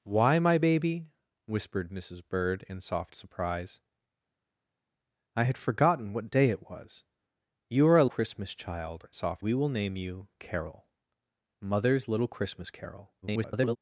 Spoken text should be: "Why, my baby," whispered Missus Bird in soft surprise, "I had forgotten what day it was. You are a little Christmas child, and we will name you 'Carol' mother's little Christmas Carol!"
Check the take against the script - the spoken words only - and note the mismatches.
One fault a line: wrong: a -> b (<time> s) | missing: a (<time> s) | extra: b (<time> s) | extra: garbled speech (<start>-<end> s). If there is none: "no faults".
missing: little (8.1 s)
wrong: and -> soft (9.1 s)
extra: garbled speech (13.2-13.8 s)